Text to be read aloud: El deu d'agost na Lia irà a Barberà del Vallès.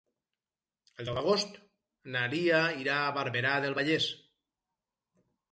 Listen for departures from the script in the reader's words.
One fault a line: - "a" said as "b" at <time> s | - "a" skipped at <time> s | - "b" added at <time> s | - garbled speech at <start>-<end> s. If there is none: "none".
none